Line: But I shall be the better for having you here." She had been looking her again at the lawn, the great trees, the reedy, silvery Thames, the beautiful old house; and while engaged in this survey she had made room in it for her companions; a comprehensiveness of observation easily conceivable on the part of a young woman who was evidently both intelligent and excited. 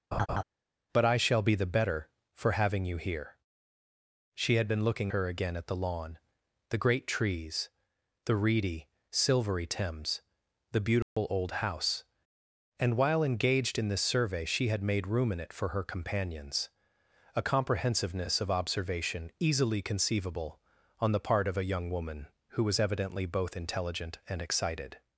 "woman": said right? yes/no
yes